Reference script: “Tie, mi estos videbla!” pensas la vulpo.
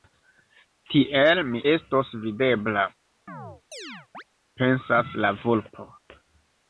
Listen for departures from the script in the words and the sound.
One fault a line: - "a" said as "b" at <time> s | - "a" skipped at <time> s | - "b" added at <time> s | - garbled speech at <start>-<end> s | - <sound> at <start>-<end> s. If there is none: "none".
- "Tie" said as "Tiel" at 0.9 s
- chirp at 3.3-4.2 s